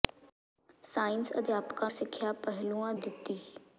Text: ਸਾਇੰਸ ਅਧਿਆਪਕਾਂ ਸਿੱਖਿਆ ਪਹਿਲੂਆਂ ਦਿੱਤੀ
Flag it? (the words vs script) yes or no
no